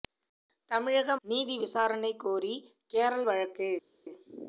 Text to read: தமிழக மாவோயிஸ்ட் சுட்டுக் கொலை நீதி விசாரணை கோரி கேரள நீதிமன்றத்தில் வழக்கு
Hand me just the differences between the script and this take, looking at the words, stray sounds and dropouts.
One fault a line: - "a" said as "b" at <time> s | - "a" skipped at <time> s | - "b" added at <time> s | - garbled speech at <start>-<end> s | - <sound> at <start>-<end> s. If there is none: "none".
- "மாவோயிஸ்ட் சுட்டுக் கொலை" skipped at 1.1 s
- "நீதிமன்றத்தில்" skipped at 3.2 s